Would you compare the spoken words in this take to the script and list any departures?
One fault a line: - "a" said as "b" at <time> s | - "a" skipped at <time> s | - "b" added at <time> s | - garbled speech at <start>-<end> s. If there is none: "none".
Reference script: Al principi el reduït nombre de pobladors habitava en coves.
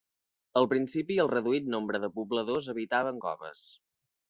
none